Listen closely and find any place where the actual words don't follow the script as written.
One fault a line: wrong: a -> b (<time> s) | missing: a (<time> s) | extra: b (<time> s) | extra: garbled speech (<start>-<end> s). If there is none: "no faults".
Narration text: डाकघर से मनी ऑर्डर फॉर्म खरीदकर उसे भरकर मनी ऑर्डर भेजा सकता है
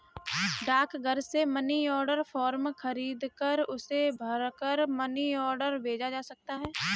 extra: जा (6.1 s)